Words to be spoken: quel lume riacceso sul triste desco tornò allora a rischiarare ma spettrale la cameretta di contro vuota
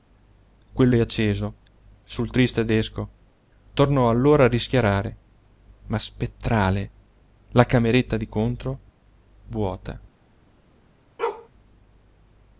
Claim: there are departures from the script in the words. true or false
true